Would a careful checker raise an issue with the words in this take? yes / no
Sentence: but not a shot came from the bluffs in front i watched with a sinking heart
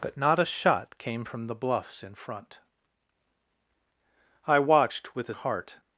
yes